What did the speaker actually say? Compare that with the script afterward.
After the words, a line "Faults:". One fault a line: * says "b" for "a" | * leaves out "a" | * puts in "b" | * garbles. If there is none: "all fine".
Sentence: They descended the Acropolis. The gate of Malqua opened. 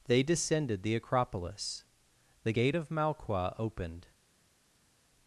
They descended the Acropolis. The gate of Malqua opened.
Faults:
all fine